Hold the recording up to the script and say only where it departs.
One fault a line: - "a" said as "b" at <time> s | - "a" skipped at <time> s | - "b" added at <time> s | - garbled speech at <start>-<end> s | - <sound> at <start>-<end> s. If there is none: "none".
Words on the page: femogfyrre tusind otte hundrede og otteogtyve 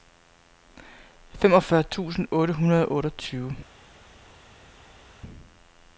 none